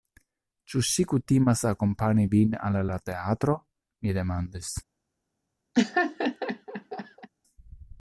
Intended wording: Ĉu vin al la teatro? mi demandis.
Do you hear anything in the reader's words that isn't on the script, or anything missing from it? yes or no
yes